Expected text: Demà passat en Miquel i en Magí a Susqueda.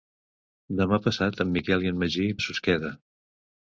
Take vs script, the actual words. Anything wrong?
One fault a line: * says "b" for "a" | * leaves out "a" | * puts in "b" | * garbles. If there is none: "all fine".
all fine